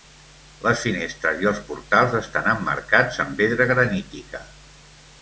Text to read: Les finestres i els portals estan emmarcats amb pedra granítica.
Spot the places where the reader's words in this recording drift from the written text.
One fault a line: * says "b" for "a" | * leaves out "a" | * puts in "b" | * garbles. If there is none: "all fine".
all fine